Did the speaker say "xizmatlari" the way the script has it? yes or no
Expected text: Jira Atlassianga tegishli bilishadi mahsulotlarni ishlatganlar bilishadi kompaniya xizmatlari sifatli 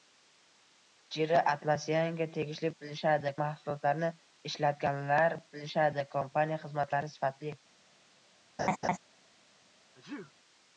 yes